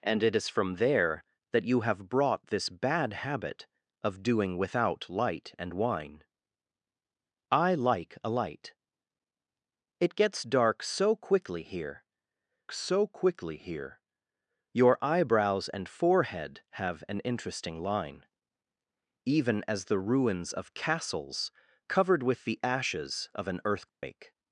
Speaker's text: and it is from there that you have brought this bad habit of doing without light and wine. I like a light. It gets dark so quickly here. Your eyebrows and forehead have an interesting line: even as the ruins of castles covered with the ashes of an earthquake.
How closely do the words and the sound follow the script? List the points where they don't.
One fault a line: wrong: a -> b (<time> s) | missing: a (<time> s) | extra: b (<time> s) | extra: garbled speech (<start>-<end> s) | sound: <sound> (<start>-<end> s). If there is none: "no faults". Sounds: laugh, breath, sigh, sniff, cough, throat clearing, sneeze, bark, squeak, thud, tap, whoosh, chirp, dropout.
extra: so quickly here (12.7 s)
sound: dropout (23.9-24.0 s)